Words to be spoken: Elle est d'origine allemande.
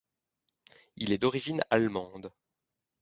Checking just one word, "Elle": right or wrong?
wrong